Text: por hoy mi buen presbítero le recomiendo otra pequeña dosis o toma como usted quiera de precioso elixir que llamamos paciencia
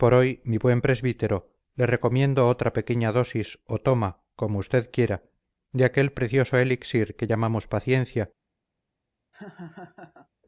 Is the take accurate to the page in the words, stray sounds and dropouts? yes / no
no